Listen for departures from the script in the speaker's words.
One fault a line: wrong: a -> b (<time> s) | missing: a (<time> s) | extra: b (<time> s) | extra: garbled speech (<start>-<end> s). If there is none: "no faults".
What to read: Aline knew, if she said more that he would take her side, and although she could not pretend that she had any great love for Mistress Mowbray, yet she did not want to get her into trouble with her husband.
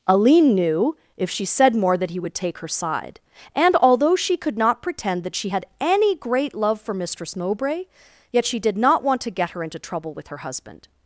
no faults